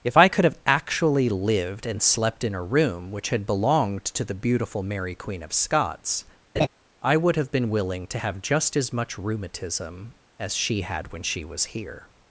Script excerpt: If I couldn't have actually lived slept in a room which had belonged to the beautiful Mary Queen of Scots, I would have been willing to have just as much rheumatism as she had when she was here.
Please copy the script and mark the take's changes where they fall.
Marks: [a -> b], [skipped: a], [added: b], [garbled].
If I [couldn't -> could] have actually lived [added: and] slept in a room which had belonged to the beautiful Mary Queen of Scots, I would have been willing to have just as much rheumatism as she had when she was here.